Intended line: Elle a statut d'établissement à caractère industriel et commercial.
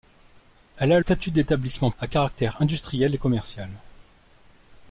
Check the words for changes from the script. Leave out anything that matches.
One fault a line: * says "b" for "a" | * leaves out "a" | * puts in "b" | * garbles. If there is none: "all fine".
all fine